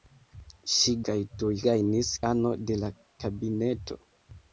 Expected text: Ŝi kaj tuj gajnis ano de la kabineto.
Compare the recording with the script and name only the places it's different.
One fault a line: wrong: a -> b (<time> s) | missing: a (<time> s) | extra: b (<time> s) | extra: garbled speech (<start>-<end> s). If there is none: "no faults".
no faults